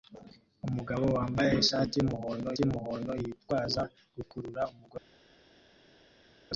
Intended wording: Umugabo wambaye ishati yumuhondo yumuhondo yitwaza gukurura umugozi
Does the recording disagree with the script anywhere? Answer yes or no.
no